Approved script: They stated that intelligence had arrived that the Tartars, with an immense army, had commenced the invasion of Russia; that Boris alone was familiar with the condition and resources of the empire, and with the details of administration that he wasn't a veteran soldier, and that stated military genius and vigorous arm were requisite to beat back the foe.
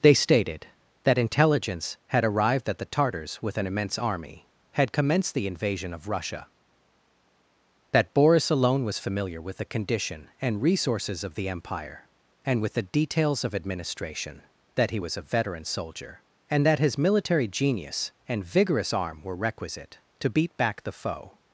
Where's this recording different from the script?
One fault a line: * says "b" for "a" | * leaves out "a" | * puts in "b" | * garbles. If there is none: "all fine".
* says "was" for "wasn't"
* says "his" for "stated"